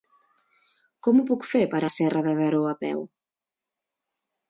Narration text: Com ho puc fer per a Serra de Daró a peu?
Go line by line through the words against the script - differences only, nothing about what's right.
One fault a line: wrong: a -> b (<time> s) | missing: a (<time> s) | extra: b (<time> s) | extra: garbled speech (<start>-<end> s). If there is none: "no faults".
no faults